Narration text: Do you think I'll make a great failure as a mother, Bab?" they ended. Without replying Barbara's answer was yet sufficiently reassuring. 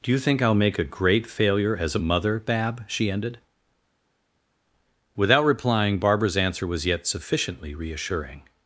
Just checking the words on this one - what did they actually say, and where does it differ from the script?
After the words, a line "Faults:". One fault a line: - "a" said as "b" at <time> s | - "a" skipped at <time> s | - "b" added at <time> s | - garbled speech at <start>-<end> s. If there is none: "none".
Do you think I'll make a great failure as a mother, Bab?" she ended. Without replying Barbara's answer was yet sufficiently reassuring.
Faults:
- "they" said as "she" at 2.9 s